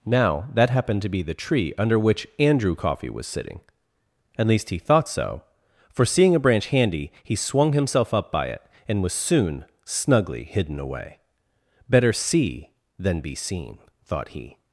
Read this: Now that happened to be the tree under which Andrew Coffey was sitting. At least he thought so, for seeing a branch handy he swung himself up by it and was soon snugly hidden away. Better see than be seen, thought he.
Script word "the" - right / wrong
right